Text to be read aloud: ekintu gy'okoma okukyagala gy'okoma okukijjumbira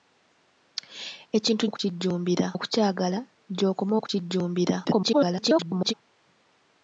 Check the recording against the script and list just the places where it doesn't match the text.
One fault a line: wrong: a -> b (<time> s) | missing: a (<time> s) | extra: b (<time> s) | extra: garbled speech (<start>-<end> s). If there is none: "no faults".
wrong: gy'okoma -> okukijjumbira (1.7 s)
extra: garbled speech (4.8-5.9 s)